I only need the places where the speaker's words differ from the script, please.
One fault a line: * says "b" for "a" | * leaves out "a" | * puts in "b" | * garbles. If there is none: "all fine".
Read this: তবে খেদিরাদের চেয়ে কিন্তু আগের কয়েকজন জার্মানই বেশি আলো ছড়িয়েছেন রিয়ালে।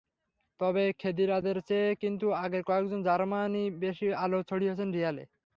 all fine